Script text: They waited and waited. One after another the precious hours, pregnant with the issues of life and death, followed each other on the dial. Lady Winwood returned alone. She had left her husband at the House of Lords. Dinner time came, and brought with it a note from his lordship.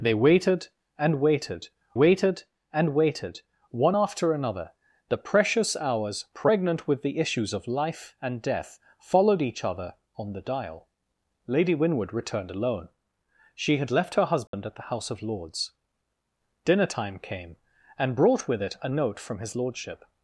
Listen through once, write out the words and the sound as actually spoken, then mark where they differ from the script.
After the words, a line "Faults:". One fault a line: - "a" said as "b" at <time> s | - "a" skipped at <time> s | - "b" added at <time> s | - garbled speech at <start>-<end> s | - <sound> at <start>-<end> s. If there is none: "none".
They waited and waited waited and waited. One after another the precious hours, pregnant with the issues of life and death, followed each other on the dial. Lady Winwood returned alone. She had left her husband at the House of Lords. Dinner time came, and brought with it a note from his lordship.
Faults:
- "waited and waited" added at 1.9 s
- dropout at 14.5-14.5 s